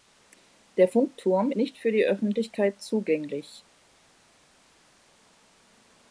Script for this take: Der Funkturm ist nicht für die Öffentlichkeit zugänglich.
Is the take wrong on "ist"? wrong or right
wrong